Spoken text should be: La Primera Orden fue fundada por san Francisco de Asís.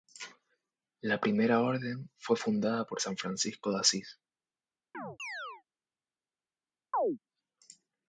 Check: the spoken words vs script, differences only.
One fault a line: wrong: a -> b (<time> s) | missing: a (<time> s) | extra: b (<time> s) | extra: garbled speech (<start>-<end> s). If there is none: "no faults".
no faults